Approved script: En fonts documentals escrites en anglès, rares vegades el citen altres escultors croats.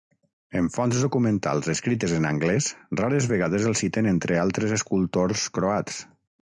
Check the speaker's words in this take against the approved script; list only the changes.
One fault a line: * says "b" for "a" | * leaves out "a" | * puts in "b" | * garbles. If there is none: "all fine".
* puts in "entre"